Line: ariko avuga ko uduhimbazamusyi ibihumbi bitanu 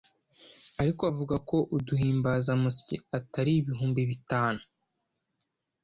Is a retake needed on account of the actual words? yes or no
yes